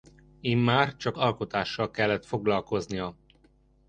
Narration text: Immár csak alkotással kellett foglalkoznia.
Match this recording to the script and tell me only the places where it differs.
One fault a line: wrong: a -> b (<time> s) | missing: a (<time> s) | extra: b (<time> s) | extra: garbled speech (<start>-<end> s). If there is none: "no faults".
no faults